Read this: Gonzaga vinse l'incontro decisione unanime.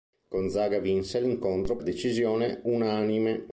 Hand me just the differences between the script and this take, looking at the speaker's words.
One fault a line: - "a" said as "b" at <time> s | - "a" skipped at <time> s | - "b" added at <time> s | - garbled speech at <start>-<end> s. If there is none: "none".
none